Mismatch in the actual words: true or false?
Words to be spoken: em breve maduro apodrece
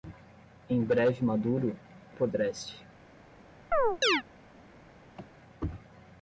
false